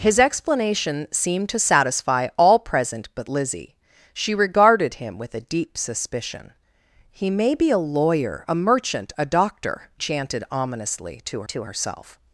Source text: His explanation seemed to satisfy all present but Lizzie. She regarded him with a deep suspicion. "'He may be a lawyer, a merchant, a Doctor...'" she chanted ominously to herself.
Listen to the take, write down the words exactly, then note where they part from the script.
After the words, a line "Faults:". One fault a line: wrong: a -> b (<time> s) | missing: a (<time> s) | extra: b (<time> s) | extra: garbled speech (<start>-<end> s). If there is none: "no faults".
His explanation seemed to satisfy all present but Lizzie. She regarded him with a deep suspicion. "'He may be a lawyer, a merchant, a Doctor...'" chanted ominously to to herself.
Faults:
missing: she (9.9 s)
extra: to (11.5 s)